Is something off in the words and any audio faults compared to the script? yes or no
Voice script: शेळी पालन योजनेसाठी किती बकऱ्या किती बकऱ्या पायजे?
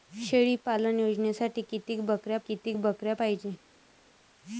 no